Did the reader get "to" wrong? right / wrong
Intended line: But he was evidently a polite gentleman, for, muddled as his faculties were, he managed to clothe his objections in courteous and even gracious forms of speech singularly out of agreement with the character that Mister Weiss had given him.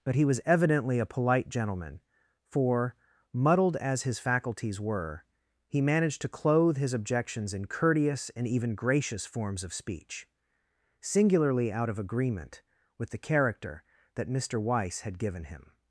right